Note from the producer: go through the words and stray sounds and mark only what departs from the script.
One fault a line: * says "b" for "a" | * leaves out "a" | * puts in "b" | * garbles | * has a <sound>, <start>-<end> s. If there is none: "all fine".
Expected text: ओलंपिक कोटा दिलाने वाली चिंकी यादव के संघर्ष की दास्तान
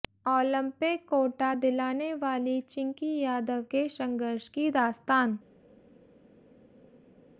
all fine